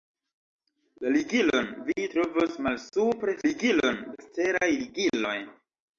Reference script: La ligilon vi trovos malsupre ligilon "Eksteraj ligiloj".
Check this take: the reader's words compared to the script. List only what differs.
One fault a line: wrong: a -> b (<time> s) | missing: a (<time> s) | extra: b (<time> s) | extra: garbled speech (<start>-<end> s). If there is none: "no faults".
no faults